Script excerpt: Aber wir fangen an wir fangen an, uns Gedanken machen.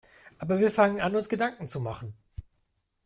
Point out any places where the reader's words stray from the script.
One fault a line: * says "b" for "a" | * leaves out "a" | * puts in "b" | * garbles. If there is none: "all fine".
* leaves out "wir fangen an"
* puts in "zu"